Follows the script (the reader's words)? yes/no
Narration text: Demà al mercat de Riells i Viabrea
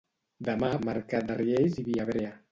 yes